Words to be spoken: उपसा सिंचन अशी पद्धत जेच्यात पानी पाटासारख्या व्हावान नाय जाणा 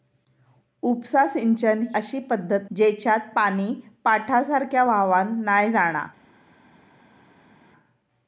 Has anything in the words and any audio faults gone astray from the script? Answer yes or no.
no